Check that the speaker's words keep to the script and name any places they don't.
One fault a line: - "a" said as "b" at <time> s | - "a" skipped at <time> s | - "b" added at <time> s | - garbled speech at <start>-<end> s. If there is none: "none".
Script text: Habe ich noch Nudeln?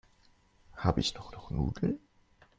- "noch" added at 1.3 s